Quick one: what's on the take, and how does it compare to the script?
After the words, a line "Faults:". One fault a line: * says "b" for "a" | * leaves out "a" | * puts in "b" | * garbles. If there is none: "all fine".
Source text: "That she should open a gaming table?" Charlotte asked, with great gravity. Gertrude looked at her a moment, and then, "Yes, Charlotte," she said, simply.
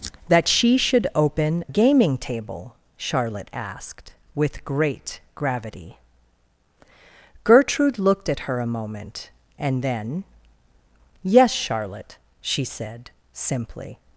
"That she should open gaming table?" Charlotte asked, with great gravity. Gertrude looked at her a moment, and then, "Yes, Charlotte," she said, simply.
Faults:
* leaves out "a"